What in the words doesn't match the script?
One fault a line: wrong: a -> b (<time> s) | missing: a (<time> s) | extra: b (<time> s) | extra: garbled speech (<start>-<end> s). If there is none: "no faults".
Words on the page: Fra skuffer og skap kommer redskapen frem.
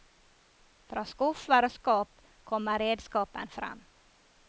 no faults